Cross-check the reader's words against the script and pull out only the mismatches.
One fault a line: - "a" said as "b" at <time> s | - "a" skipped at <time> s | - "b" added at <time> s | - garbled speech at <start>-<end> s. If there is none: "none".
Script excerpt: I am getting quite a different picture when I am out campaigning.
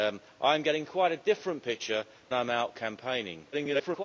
- "when" skipped at 2.0 s
- garbled speech at 3.5-4.0 s